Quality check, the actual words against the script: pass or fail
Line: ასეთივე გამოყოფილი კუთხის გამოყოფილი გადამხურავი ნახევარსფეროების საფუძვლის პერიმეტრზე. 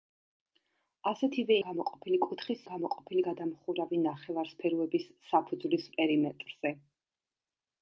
pass